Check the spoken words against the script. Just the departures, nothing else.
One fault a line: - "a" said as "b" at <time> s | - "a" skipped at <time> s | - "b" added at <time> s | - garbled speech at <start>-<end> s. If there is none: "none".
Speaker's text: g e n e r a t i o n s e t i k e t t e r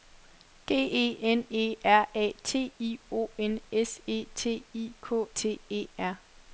- "e t" skipped at 5.2 s